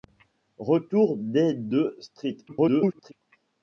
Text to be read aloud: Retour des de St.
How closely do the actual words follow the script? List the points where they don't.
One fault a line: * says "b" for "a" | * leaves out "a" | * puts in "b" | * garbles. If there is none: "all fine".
* garbles